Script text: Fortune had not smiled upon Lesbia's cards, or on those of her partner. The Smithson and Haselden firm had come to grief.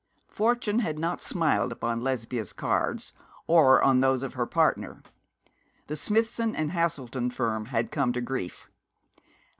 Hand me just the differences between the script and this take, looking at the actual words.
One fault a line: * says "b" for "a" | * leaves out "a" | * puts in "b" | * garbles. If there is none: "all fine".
all fine